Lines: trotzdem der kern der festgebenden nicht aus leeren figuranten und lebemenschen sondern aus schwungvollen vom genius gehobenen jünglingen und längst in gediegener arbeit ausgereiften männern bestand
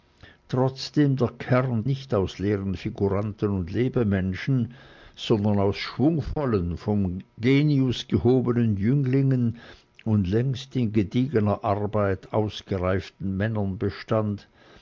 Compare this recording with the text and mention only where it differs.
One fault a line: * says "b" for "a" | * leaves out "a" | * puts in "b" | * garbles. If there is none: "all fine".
* leaves out "der festgebenden"